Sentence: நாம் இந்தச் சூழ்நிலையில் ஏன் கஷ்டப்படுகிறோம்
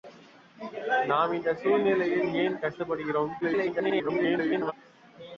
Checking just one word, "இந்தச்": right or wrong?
right